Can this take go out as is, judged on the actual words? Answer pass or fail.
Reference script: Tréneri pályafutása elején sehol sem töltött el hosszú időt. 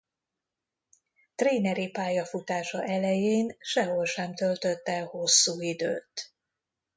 pass